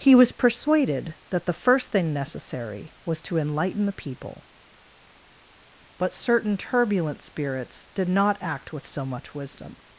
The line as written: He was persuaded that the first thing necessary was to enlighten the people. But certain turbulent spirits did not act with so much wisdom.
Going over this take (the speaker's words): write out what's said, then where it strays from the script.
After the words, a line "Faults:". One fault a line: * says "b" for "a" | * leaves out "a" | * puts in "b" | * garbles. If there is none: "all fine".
He was persuaded that the first thing necessary was to enlighten the people. But certain turbulent spirits did not act with so much wisdom.
Faults:
all fine